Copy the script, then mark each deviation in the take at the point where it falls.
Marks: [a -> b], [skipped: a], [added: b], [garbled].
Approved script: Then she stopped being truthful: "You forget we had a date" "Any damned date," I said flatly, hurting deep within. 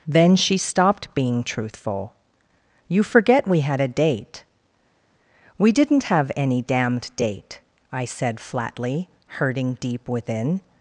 Then she stopped being truthful: "You forget we had a date" [added: We didn't have] "Any damned date," I said flatly, hurting deep within.